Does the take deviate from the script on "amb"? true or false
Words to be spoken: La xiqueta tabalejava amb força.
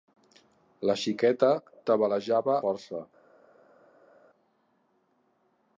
true